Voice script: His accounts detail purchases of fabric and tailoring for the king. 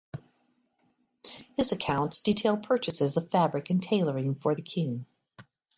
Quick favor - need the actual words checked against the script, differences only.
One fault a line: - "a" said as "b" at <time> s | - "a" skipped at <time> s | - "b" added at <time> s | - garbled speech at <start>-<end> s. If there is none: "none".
none